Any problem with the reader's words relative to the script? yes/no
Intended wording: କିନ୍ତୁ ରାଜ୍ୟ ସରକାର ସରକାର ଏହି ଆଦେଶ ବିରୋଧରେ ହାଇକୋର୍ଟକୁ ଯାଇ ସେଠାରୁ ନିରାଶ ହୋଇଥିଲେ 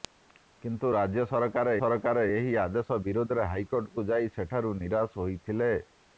no